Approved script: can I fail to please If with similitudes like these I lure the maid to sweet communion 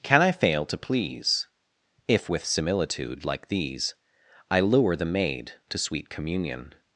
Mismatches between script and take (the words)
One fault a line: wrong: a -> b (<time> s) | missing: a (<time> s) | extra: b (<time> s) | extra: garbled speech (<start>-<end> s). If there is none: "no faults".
wrong: similitudes -> similitude (2.4 s)